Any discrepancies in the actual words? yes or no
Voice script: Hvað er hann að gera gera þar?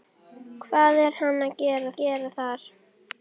no